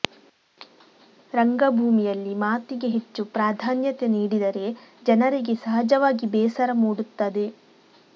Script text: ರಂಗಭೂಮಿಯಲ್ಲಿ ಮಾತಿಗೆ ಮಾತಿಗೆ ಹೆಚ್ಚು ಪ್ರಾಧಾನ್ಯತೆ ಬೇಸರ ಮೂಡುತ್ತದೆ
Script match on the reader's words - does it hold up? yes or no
no